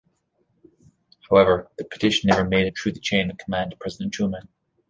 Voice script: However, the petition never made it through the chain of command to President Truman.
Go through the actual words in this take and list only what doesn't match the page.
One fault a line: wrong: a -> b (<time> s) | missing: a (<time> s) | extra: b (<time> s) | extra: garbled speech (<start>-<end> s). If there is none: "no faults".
no faults